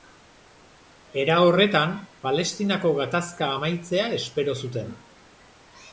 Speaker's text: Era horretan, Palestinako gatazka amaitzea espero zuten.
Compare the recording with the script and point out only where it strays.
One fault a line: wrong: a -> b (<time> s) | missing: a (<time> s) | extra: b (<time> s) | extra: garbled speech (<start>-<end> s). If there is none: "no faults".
no faults